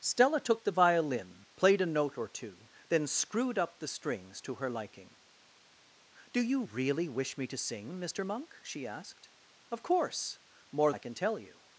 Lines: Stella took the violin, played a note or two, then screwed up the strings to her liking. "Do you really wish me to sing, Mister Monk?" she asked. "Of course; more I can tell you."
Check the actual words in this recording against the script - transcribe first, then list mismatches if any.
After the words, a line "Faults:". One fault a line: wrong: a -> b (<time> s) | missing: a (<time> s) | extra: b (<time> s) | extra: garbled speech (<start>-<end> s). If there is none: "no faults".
Stella took the violin, played a note or two, then screwed up the strings to her liking. "Do you really wish me to sing, Mister Monk?" she asked. "Of course; more I can tell you."
Faults:
no faults